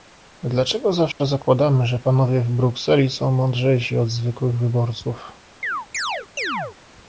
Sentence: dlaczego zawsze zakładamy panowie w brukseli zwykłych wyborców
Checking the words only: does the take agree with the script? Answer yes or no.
no